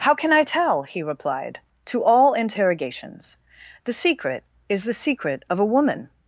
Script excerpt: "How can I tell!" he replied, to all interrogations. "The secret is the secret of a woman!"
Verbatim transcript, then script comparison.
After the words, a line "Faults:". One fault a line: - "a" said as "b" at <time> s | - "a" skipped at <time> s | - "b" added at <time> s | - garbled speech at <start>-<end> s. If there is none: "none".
"How can I tell!" he replied, to all interrogations. "The secret is the secret of a woman!"
Faults:
none